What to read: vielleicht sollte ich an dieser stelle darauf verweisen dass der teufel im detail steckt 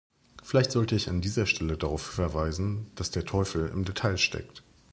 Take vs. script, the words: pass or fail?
pass